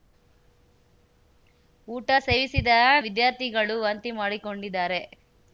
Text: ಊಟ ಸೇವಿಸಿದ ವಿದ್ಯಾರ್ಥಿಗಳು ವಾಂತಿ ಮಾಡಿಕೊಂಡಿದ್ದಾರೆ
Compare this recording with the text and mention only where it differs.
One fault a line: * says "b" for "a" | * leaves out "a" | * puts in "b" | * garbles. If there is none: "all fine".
all fine